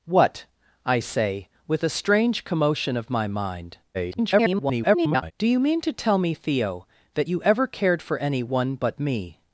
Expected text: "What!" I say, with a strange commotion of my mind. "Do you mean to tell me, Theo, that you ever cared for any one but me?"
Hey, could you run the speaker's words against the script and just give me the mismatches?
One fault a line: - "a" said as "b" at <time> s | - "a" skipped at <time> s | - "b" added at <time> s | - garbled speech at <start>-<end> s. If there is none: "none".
- garbled speech at 3.9-5.3 s